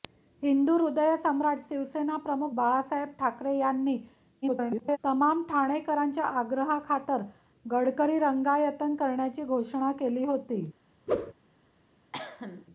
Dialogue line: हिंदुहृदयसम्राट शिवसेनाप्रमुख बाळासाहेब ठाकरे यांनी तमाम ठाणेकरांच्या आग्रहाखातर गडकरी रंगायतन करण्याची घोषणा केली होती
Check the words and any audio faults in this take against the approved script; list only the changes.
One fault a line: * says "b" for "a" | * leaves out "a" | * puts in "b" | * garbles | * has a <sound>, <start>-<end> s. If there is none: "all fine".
* garbles
* has a whoosh, 11.1-11.3 s
* has a cough, 12.1-12.7 s